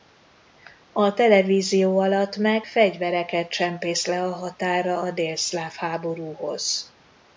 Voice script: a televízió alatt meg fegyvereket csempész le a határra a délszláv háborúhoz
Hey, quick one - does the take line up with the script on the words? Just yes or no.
yes